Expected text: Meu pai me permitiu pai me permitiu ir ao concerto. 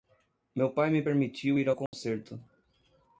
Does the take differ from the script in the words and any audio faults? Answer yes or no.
yes